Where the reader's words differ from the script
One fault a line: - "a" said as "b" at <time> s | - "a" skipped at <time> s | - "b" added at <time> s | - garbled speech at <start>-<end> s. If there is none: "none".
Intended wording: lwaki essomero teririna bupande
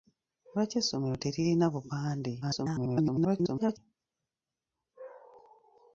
- garbled speech at 2.4-3.8 s